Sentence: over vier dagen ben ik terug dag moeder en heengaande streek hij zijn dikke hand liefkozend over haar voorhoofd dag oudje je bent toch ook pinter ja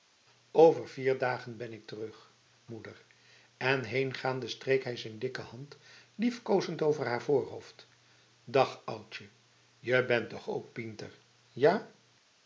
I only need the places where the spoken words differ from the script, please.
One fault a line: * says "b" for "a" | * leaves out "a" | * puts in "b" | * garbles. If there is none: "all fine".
* leaves out "dag"